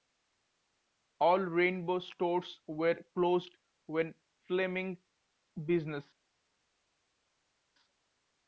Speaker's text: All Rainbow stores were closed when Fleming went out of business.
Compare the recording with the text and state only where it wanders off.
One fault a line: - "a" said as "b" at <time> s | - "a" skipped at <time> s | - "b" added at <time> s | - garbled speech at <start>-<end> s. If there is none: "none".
- "went out of" skipped at 5.0 s